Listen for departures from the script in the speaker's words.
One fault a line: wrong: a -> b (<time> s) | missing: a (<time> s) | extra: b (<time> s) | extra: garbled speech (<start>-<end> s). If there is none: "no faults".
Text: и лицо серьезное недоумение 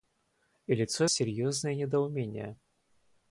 no faults